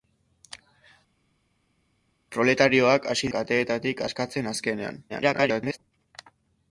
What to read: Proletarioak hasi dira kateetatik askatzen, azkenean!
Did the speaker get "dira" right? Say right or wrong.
wrong